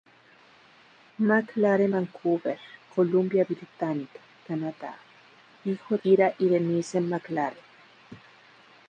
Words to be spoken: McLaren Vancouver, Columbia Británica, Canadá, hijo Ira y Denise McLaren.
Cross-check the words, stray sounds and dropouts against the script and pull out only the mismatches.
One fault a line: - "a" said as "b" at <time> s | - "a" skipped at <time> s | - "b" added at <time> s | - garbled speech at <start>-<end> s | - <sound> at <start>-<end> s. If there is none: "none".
none